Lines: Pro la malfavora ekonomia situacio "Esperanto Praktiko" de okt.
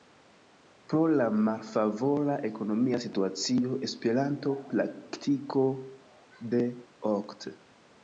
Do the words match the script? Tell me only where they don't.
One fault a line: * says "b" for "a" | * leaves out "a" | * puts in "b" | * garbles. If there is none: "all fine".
all fine